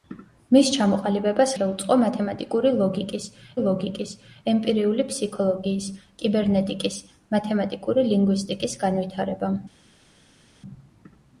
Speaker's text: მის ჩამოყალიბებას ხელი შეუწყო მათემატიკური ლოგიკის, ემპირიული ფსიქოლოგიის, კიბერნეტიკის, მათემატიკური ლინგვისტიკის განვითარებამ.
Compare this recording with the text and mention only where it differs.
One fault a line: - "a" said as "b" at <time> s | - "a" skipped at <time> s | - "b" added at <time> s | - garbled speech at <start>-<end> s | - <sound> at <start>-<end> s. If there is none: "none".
- "ხელი" skipped at 1.5 s
- "ლოგიკის" added at 3.6 s